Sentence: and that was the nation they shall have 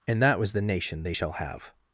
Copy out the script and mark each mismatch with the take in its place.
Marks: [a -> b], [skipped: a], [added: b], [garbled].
and that was the nation they shall have